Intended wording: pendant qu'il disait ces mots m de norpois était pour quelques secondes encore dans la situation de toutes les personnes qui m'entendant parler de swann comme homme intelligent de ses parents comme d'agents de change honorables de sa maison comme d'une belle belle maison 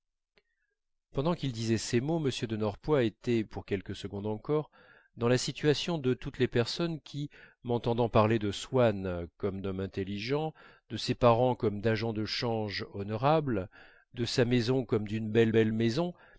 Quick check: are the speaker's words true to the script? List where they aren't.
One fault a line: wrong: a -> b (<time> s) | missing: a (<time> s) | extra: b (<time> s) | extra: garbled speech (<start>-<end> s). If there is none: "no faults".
no faults